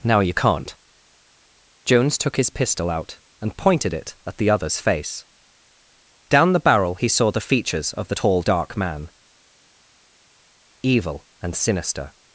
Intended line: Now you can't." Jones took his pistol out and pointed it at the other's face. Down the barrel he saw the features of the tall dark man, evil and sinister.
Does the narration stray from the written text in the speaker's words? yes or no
no